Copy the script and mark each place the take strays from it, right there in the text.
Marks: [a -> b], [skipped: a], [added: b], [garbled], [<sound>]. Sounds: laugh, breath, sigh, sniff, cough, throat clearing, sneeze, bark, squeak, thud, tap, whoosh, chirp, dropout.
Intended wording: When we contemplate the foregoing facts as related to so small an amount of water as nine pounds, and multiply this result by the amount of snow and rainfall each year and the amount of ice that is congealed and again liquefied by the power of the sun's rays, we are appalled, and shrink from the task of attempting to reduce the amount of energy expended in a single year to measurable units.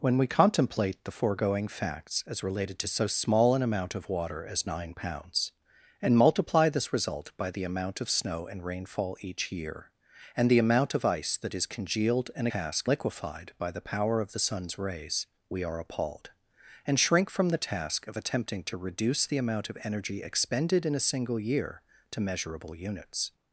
When we contemplate the foregoing facts as related to so small an amount of water as nine pounds, and multiply this result by the amount of snow and rainfall each year and the amount of ice that is congealed and [again -> task] liquefied by the power of the sun's rays, we are appalled, and shrink from the task of attempting to reduce the amount of energy expended in a single year to measurable units.